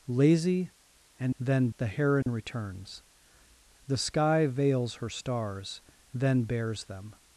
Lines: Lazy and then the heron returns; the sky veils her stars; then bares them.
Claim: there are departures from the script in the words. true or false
false